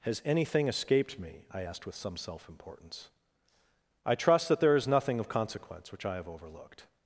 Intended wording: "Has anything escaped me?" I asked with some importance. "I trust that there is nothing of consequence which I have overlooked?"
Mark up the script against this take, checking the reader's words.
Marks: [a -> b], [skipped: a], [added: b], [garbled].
"Has anything escaped me?" I asked with some [added: self] importance. "I trust that there is nothing of consequence which I have overlooked?"